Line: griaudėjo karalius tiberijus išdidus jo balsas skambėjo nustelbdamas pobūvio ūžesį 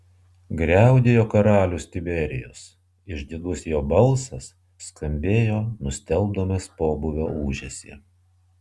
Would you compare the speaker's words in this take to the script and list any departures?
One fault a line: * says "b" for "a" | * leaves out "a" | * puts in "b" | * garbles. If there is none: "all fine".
all fine